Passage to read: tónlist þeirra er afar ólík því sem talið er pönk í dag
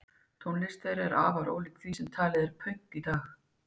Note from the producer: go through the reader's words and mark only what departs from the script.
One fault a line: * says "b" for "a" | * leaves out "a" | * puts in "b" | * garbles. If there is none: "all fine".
all fine